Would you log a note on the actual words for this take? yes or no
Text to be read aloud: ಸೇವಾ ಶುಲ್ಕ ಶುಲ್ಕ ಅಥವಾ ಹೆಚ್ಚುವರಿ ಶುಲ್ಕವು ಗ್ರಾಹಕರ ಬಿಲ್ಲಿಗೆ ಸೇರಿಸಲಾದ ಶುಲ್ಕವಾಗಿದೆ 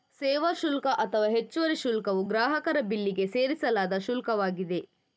yes